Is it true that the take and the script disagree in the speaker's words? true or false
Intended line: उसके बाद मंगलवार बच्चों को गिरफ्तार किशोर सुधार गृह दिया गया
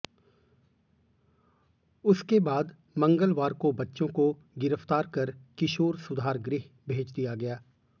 true